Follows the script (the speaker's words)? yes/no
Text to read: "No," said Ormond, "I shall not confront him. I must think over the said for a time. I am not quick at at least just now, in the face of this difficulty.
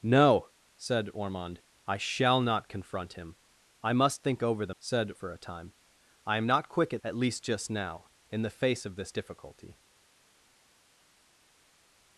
yes